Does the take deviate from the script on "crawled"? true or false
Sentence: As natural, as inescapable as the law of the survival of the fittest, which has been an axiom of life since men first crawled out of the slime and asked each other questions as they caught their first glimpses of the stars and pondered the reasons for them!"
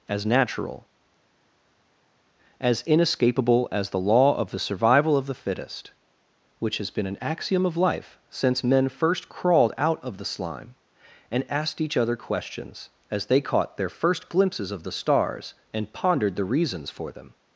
false